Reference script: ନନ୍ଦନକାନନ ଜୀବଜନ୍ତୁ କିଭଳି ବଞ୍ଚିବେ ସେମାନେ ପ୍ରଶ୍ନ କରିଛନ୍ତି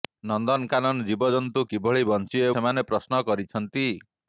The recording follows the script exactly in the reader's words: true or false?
true